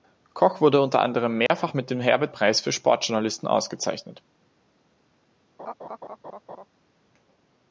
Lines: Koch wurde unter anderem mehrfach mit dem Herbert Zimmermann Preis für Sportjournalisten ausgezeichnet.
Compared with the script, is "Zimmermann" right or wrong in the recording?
wrong